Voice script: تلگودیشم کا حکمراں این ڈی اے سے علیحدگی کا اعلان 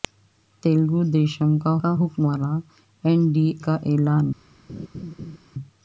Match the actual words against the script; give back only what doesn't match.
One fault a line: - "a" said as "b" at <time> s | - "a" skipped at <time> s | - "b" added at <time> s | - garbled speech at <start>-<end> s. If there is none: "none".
- "کا" added at 1.8 s
- "اے سے علیحدگی" skipped at 3.5 s